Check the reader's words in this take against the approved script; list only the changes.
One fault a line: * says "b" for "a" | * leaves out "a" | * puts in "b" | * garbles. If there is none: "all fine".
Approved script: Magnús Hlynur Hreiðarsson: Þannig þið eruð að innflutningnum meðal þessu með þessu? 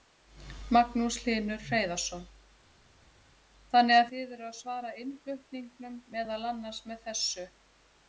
* puts in "að"
* puts in "svara"
* says "annars" for "þessu"